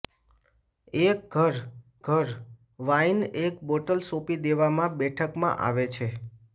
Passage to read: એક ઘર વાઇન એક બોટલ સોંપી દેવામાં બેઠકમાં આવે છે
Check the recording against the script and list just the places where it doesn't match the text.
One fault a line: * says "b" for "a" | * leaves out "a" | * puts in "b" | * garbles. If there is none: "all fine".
* puts in "ઘર"